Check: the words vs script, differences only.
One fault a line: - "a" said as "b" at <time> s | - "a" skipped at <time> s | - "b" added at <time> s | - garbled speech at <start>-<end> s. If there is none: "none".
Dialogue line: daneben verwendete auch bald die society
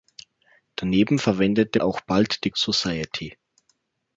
none